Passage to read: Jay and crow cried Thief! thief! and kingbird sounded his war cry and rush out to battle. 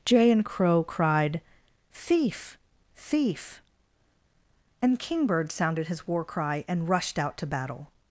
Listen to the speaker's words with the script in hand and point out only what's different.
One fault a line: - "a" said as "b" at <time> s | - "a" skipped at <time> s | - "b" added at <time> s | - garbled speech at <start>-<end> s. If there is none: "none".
- "rush" said as "rushed" at 6.9 s